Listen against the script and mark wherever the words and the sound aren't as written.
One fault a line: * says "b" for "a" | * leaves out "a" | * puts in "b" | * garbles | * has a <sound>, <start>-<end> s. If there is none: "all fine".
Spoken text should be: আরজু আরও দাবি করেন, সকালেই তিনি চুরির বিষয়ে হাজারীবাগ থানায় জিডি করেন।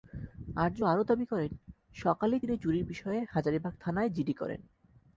all fine